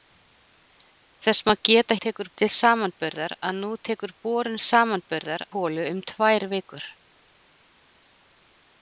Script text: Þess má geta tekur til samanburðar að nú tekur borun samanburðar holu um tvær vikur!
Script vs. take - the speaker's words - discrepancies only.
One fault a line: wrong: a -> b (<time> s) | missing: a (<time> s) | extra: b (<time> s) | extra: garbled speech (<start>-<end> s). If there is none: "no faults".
no faults